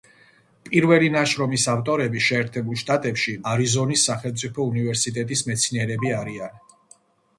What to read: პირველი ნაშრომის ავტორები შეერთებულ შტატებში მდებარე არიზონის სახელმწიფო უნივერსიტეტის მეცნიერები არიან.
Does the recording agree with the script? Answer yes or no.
no